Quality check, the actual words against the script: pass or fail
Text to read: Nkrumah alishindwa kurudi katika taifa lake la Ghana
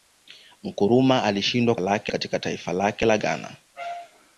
fail